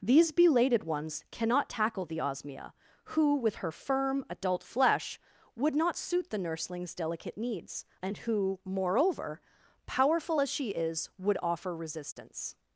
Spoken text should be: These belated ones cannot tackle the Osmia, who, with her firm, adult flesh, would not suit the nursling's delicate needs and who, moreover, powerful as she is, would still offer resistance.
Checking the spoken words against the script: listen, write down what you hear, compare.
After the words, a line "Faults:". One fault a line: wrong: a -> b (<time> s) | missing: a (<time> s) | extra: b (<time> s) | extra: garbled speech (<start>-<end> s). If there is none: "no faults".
These belated ones cannot tackle the Osmia, who, with her firm, adult flesh, would not suit the nursling's delicate needs and who, moreover, powerful as she is, would offer resistance.
Faults:
missing: still (11.4 s)